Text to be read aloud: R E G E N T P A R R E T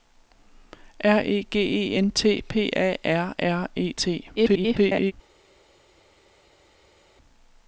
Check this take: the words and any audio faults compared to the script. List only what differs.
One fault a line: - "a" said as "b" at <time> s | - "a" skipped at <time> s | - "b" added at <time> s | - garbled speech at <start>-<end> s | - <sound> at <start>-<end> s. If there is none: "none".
- garbled speech at 4.4-5.1 s